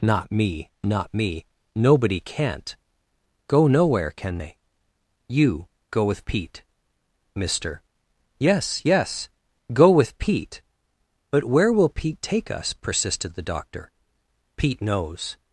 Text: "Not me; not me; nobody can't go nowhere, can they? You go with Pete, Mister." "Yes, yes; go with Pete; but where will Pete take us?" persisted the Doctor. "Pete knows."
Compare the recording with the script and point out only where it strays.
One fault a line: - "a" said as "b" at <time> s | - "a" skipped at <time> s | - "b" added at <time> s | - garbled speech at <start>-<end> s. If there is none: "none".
none